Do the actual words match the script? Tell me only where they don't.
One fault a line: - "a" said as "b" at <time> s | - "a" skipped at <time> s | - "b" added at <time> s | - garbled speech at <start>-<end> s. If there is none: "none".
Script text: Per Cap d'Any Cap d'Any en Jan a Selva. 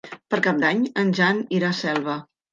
- "Cap d'Any" skipped at 0.9 s
- "irà" added at 1.6 s